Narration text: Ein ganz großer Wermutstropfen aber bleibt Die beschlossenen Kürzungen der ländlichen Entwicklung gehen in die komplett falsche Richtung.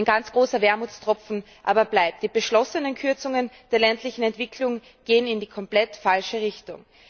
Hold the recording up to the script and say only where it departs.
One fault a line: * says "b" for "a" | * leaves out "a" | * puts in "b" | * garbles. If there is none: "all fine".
all fine